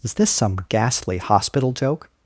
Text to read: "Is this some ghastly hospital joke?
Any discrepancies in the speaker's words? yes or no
no